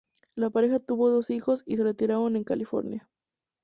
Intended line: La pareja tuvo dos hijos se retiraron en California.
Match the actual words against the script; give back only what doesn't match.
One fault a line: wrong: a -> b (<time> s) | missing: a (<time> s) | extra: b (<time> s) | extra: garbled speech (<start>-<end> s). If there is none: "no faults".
extra: y (1.6 s)